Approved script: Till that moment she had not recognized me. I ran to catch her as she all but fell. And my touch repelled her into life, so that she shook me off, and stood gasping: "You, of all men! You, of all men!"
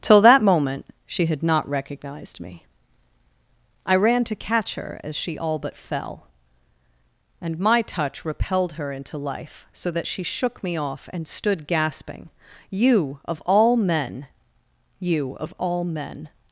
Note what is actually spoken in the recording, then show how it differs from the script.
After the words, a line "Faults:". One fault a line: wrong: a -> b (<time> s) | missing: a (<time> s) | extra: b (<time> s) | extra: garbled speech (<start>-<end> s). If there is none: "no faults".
Till that moment she had not recognized me. I ran to catch her as she all but fell. And my touch repelled her into life, so that she shook me off, and stood gasping: "You, of all men! You, of all men!"
Faults:
no faults